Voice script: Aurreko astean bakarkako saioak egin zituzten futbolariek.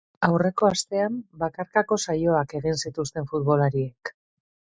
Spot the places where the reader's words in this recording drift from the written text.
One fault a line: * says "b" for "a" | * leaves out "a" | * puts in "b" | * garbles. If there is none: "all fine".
all fine